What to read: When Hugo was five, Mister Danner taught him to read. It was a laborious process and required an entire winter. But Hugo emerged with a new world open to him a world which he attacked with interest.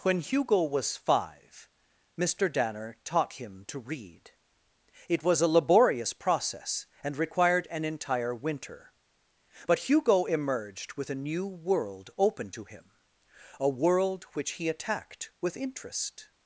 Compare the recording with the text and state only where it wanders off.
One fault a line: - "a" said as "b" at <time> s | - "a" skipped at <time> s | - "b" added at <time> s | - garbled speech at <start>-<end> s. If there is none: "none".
none